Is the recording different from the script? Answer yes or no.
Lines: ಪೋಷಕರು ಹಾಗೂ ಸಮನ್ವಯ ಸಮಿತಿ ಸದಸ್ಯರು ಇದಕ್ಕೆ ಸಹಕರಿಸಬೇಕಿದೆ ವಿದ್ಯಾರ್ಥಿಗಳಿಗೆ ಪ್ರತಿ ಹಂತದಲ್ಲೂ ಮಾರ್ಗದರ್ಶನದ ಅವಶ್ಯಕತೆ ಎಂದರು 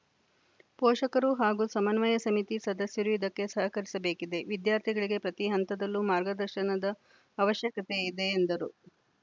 yes